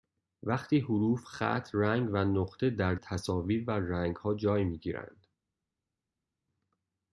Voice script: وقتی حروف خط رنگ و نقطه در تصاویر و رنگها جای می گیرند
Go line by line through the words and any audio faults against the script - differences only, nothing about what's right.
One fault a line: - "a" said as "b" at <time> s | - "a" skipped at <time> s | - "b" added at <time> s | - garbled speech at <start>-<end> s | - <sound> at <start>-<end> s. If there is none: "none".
none